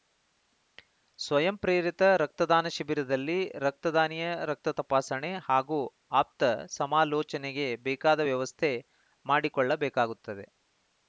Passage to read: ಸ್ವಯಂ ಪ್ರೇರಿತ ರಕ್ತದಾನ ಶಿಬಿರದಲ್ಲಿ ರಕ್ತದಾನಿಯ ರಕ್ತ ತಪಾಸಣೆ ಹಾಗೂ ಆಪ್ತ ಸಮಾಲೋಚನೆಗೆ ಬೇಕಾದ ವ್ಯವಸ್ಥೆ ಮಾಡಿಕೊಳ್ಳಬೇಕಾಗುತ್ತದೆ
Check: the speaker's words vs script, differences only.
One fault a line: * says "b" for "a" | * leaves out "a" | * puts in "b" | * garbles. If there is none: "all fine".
all fine